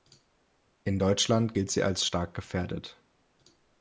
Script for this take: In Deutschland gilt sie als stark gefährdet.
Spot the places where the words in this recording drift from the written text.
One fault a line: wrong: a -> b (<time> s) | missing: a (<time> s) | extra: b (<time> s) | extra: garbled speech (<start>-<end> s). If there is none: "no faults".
no faults